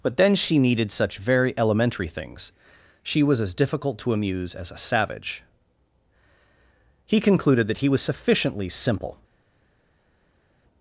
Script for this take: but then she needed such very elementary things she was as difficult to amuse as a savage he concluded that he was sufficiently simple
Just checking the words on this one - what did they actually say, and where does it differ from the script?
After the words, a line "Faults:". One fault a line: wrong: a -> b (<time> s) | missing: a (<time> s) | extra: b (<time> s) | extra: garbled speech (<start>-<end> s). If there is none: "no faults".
but then she needed such very elementary things she was as difficult to amuse as a savage he concluded that he was sufficiently simple
Faults:
no faults